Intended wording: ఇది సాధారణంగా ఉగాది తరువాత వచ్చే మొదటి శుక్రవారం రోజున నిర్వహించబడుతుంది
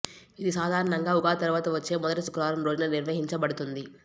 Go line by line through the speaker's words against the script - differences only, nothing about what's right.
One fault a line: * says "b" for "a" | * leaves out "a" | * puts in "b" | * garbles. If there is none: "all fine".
all fine